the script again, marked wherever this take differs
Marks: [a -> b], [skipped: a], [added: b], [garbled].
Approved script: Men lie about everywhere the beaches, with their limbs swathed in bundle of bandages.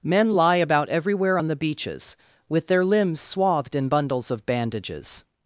Men lie about everywhere [added: on] the beaches, with their limbs swathed in [bundle -> bundles] of bandages.